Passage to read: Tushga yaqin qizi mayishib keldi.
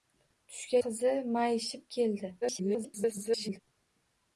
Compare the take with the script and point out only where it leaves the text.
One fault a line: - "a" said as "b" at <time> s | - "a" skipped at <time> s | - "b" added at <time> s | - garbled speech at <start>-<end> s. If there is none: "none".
- "yaqin" skipped at 0.8 s
- garbled speech at 2.4-3.6 s